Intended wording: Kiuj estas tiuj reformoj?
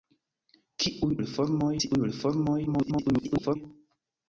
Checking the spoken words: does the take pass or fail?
fail